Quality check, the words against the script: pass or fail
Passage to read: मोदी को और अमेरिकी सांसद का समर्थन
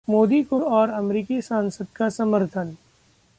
pass